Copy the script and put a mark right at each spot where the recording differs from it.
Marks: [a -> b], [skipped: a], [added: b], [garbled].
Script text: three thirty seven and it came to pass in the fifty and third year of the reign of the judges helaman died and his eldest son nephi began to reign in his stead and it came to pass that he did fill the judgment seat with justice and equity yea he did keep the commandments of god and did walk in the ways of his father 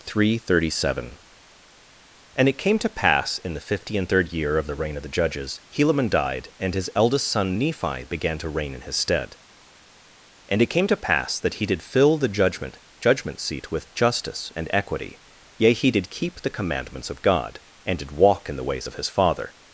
three thirty seven and it came to pass in the fifty and third year of the reign of the judges helaman died and his eldest son nephi began to reign in his stead and it came to pass that he did fill the judgment [added: judgment] seat with justice and equity yea he did keep the commandments of god and did walk in the ways of his father